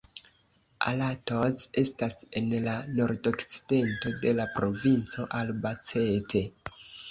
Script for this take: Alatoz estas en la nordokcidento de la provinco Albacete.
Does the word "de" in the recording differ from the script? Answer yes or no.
no